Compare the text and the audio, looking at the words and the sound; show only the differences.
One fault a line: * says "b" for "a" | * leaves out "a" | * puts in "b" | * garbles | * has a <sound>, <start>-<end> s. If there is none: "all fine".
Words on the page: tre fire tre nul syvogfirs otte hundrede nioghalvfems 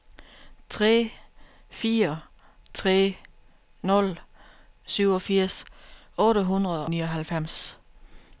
all fine